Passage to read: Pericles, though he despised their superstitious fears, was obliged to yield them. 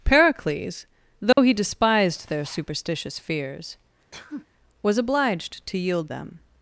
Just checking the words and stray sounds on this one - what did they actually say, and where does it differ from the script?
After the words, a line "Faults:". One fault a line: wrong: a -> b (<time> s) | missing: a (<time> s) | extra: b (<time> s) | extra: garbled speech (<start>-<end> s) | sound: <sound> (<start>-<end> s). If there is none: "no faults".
Pericles, though he despised their superstitious fears, was obliged to yield them.
Faults:
sound: dropout (1.3-1.4 s)
sound: sneeze (4.1-4.5 s)